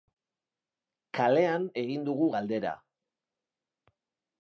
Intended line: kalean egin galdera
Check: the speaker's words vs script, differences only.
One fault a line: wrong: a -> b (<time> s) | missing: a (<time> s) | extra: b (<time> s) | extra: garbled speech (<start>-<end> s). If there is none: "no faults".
extra: dugu (2.1 s)